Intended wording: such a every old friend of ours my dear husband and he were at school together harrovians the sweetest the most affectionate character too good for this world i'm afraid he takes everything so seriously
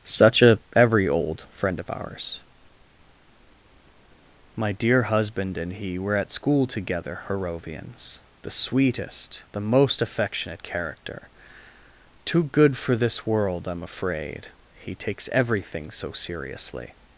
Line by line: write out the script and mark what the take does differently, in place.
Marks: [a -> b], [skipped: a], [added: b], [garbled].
such a every old friend of ours my dear husband and he were at school together harrovians the sweetest the most affectionate character too good for this world i'm afraid he takes everything so seriously